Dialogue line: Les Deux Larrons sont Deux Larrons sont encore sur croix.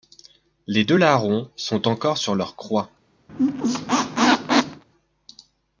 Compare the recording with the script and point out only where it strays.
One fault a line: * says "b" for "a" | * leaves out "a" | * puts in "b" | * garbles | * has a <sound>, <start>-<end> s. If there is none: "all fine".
* leaves out "Deux Larrons sont"
* puts in "leur"
* has a squeak, 3.3-4.8 s